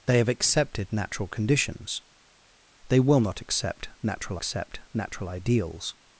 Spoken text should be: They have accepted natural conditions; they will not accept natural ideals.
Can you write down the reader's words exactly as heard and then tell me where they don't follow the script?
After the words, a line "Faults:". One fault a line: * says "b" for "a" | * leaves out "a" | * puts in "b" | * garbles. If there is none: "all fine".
They have accepted natural conditions; they will not accept natural accept natural ideals.
Faults:
* puts in "accept natural"